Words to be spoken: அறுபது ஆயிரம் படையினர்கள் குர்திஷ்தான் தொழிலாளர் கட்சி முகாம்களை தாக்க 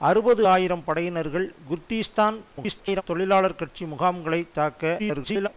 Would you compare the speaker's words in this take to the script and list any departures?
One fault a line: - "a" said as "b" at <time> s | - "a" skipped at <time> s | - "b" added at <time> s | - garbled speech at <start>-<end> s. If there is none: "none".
- garbled speech at 2.5-3.0 s
- garbled speech at 5.0-5.5 s